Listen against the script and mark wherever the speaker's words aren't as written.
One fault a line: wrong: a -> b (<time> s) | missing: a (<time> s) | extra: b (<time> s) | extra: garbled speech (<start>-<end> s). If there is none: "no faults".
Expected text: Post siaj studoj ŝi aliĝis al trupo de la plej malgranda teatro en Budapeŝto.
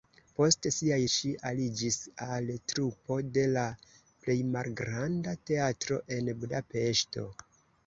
missing: studoj (0.9 s)